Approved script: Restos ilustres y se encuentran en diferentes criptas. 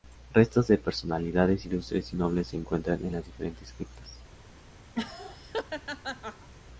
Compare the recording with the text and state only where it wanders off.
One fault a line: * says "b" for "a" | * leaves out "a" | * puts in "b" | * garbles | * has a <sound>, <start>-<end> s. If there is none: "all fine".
* puts in "de personalidades"
* puts in "nobles"
* puts in "las"
* has a laugh, 4.9-6.5 s